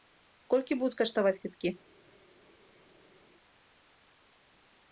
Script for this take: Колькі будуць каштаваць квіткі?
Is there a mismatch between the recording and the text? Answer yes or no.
no